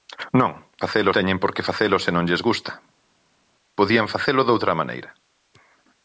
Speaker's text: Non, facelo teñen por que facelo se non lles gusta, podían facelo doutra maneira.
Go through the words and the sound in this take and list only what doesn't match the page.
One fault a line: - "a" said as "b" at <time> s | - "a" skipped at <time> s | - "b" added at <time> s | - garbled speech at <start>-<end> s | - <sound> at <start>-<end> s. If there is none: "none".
none